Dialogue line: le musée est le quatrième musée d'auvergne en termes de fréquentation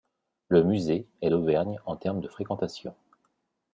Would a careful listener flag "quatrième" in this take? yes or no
yes